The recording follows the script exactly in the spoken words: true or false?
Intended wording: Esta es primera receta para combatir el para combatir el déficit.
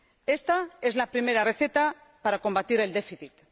false